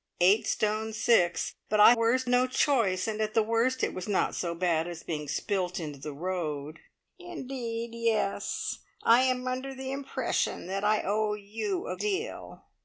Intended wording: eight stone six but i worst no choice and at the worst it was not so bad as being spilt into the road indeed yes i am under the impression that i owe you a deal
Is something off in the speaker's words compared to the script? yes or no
no